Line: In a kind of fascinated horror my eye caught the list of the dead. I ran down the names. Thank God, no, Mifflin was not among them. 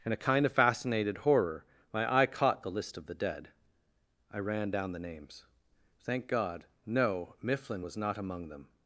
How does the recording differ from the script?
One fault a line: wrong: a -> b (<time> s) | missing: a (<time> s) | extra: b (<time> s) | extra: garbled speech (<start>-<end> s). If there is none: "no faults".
no faults